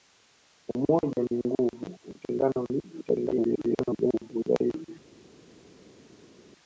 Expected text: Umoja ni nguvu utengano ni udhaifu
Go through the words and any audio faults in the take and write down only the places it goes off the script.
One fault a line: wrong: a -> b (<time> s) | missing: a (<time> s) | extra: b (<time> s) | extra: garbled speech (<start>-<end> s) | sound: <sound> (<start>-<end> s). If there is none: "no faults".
extra: garbled speech (2.9-4.3 s)